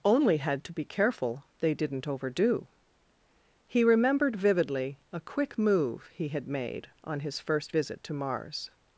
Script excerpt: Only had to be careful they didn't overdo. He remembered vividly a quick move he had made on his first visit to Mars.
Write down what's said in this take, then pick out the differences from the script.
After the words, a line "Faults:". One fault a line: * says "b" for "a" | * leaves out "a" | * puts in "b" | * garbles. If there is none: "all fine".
Only had to be careful they didn't overdo. He remembered vividly a quick move he had made on his first visit to Mars.
Faults:
all fine